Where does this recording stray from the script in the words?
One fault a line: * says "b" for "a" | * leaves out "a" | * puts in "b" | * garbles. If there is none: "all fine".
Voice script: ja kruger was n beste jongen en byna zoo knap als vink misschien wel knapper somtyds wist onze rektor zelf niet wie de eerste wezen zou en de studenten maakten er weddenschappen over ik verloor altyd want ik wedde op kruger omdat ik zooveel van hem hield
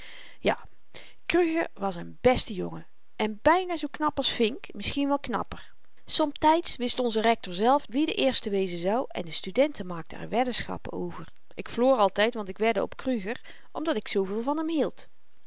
* leaves out "niet"